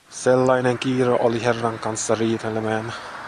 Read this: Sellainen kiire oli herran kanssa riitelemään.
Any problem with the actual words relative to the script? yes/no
no